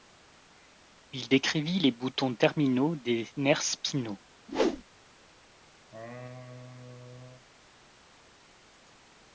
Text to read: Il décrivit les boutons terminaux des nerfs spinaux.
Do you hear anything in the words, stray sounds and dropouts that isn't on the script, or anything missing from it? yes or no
yes